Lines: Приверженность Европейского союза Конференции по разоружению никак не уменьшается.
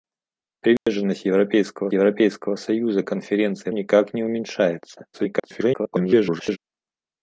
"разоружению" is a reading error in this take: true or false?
true